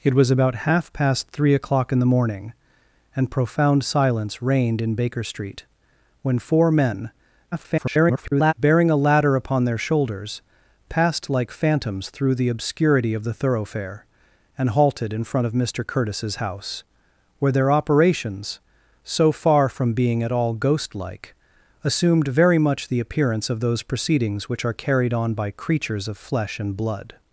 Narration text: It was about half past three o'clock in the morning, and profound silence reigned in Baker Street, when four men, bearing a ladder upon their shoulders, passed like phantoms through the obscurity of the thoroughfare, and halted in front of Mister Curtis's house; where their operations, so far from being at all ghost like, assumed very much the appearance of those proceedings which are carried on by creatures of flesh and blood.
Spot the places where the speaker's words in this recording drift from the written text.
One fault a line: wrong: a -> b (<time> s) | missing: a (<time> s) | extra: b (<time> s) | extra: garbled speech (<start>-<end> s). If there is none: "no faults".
extra: garbled speech (7.5-8.5 s)